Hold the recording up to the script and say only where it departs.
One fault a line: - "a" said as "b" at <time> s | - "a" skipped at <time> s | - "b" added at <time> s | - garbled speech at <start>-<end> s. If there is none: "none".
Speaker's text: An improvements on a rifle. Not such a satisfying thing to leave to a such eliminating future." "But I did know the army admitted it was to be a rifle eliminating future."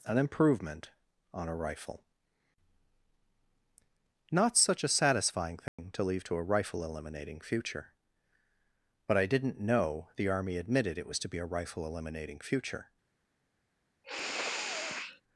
- "improvements" said as "improvement" at 0.2 s
- "such" said as "rifle" at 6.4 s
- "did" said as "didn't" at 9.2 s